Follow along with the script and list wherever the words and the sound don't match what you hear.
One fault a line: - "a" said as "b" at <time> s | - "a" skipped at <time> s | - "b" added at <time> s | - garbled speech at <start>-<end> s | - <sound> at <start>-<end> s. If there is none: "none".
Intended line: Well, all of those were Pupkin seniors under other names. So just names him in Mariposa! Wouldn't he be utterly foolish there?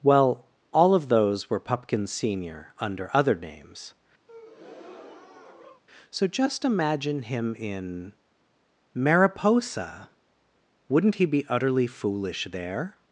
- "seniors" said as "senior" at 2.1 s
- breath at 4.3-5.8 s
- "names" said as "imagine" at 6.6 s